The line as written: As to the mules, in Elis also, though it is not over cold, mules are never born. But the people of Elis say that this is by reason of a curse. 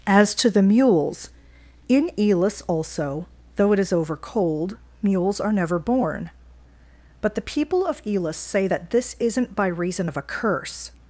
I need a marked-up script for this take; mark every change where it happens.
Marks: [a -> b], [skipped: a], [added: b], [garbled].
As to the mules, in Elis also, though it is [skipped: not] over cold, mules are never born. But the people of Elis say that this [is -> isn't] by reason of a curse.